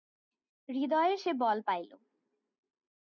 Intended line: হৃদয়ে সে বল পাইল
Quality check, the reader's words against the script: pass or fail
pass